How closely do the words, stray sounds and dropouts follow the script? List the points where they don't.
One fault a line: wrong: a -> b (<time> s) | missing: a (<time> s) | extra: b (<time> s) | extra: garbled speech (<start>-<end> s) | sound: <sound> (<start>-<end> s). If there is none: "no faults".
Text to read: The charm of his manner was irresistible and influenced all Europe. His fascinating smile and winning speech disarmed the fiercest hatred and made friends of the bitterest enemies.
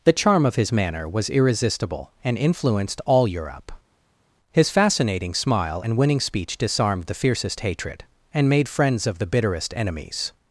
no faults